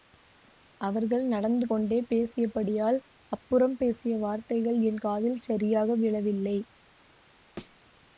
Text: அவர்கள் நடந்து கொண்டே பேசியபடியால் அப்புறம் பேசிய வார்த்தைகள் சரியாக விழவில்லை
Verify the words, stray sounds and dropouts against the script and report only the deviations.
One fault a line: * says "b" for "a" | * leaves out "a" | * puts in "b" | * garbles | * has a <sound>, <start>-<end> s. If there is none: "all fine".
* puts in "என் காதில்"
* has a thud, 7.6-7.8 s